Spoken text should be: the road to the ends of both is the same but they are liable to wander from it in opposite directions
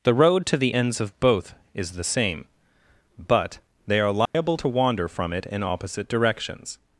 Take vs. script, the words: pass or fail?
pass